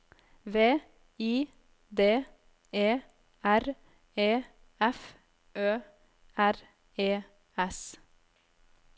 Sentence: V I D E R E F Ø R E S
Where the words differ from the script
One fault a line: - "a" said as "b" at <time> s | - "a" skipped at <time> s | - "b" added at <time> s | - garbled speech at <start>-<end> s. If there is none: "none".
none